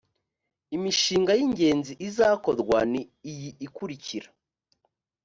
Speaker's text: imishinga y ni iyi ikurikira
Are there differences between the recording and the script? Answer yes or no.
yes